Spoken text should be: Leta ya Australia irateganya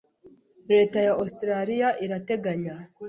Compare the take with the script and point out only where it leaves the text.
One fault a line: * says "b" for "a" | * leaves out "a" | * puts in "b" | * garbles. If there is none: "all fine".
all fine